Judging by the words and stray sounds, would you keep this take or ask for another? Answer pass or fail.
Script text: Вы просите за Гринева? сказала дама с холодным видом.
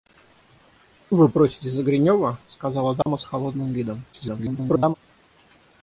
fail